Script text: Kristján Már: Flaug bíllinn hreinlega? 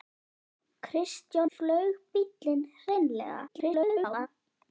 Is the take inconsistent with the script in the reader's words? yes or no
yes